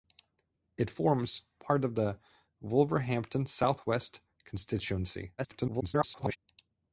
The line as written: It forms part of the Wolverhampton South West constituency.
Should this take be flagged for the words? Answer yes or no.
yes